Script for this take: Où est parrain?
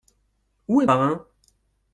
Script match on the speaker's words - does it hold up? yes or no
yes